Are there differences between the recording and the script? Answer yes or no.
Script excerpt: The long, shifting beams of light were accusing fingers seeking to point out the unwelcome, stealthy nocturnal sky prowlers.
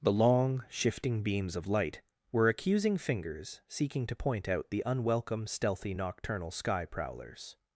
no